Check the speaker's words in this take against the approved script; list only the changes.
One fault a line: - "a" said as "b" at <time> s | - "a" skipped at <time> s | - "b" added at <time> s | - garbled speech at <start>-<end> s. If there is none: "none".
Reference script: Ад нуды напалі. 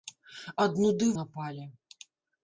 none